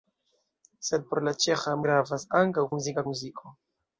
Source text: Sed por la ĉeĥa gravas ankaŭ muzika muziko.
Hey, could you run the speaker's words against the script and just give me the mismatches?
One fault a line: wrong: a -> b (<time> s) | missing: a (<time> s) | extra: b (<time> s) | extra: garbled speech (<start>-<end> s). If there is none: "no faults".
no faults